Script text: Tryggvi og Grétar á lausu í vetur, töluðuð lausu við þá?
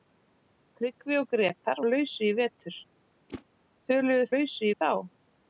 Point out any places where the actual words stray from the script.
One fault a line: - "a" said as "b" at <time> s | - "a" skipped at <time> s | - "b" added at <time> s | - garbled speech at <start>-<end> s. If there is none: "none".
none